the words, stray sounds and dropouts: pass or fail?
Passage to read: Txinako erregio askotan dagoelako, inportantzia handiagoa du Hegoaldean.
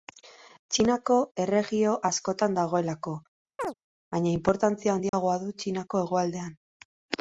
fail